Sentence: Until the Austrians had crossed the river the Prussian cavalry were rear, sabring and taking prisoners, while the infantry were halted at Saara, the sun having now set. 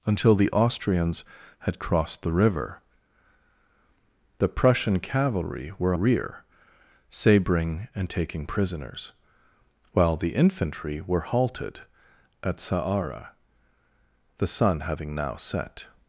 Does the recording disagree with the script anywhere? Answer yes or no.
no